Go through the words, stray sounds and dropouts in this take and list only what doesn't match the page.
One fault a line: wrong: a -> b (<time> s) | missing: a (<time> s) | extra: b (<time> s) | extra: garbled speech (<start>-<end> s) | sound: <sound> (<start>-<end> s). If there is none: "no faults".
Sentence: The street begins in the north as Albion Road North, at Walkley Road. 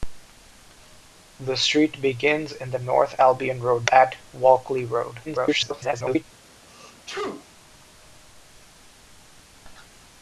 missing: as (3.1 s)
missing: North (3.9 s)
extra: garbled speech (5.2-6.2 s)
sound: sneeze (6.7-7.5 s)